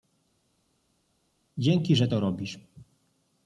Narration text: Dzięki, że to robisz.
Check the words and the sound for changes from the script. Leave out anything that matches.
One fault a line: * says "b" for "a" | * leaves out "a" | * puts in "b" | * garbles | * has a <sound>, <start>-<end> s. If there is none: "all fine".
all fine